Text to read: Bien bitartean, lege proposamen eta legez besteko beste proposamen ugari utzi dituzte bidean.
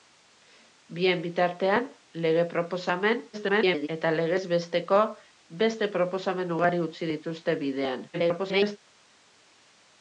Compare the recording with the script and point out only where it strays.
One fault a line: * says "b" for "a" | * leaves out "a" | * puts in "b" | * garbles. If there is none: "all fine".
* garbles
* garbles